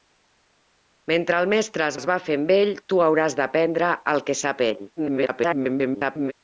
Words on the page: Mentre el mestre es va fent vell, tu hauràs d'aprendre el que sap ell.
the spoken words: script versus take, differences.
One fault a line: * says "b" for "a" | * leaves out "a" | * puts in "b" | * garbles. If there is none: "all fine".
* puts in "es"
* garbles